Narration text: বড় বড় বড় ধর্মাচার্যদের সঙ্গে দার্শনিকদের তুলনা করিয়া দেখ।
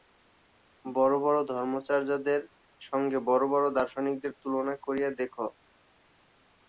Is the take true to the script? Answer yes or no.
no